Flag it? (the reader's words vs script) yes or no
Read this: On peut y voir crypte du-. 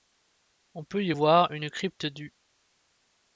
yes